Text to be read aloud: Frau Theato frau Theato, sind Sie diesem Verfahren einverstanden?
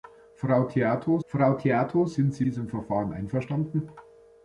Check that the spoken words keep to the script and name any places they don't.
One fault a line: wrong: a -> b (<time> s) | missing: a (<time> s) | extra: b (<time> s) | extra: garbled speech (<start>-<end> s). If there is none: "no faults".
no faults